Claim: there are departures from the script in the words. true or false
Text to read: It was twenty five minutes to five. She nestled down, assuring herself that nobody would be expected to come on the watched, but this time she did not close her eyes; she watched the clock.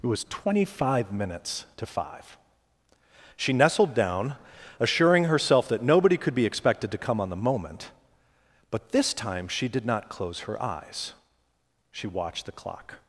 true